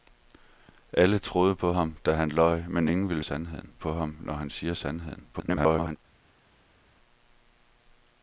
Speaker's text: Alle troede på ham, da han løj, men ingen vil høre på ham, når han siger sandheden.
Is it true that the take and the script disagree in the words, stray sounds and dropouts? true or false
true